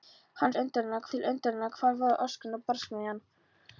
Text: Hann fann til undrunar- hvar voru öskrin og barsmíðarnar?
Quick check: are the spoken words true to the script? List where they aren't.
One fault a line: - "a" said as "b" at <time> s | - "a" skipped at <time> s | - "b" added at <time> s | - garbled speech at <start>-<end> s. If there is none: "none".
- "fann" said as "undrunar" at 0.6 s